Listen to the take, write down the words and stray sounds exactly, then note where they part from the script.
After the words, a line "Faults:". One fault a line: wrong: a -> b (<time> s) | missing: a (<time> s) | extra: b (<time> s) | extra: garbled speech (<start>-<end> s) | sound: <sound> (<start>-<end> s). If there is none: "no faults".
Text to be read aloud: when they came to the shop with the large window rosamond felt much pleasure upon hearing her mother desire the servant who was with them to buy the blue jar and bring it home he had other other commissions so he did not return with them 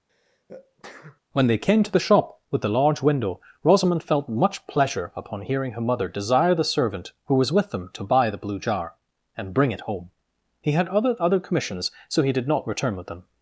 when they came to the shop with the large window rosamond felt much pleasure upon hearing her mother desire the servant who was with them to buy the blue jar and bring it home he had other other commissions so he did not return with them
Faults:
sound: sneeze (0.1-1.2 s)